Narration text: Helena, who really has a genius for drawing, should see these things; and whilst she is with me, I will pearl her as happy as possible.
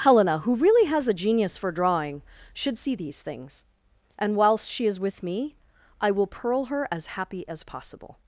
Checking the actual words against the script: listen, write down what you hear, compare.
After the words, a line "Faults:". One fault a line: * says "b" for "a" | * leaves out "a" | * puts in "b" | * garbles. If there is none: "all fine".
Helena, who really has a genius for drawing, should see these things; and whilst she is with me, I will pearl her as happy as possible.
Faults:
all fine